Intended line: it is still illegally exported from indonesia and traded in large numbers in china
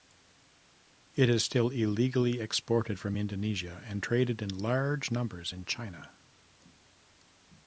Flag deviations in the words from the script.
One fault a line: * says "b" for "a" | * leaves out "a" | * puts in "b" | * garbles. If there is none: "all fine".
all fine